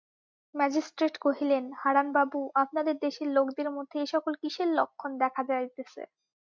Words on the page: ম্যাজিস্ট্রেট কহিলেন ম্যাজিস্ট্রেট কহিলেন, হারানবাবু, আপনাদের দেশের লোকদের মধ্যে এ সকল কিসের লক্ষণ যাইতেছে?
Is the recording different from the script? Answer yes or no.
yes